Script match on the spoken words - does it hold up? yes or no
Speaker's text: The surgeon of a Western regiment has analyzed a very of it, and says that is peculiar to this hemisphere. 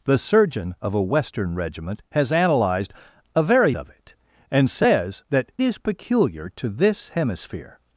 yes